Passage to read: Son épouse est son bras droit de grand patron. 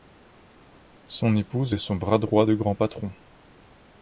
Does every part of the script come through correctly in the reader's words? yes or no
yes